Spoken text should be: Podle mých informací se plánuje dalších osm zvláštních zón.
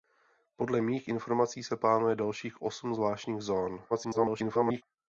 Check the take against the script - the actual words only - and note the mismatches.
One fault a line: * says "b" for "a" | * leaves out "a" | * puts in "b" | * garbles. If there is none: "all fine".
* garbles